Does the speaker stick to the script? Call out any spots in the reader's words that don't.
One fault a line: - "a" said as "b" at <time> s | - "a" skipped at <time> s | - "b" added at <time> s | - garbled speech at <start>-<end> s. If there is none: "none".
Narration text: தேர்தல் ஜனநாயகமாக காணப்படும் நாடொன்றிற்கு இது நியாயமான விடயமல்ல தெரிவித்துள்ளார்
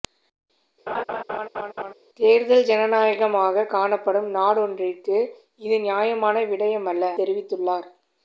none